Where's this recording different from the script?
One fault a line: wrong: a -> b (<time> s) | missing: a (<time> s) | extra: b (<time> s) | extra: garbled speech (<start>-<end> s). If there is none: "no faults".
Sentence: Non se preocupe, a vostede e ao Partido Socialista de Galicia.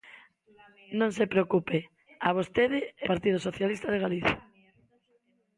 missing: ao (3.1 s)